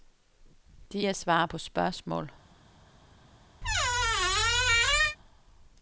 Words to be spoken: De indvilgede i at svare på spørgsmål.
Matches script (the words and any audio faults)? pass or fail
fail